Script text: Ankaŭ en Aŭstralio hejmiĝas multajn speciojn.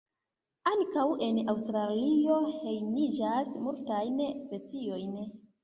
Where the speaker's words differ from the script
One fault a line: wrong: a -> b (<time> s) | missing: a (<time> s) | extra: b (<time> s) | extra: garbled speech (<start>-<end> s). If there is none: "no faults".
no faults